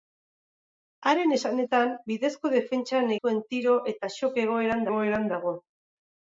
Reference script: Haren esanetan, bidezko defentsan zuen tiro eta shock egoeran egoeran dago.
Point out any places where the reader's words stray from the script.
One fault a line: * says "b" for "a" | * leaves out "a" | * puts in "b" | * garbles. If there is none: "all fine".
all fine